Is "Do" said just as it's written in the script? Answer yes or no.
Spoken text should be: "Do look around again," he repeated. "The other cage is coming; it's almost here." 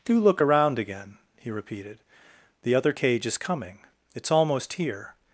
yes